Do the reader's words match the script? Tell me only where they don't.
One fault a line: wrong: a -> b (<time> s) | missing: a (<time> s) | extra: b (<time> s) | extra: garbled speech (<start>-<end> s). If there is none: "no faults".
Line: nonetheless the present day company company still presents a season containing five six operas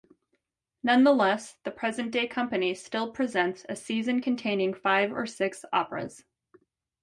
missing: company (2.7 s)
extra: or (5.1 s)